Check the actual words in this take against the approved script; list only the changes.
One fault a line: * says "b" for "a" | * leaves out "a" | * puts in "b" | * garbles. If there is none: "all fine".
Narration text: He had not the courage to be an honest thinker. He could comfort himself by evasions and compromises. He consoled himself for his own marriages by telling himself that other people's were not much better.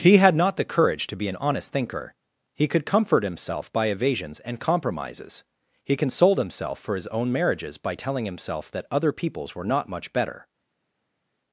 all fine